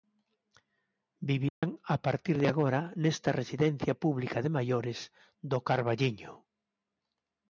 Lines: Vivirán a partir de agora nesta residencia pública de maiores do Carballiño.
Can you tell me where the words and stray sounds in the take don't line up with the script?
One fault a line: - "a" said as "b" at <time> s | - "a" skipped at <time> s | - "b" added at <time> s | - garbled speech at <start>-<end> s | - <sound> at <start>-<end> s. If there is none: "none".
- dropout at 1.5-1.6 s